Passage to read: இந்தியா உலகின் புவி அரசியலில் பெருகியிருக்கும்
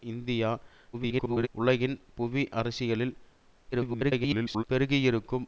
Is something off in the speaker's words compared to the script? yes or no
yes